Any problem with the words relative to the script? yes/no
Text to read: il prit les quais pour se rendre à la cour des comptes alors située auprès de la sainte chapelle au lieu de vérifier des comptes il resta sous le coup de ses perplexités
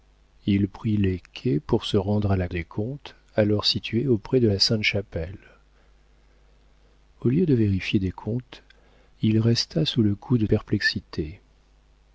yes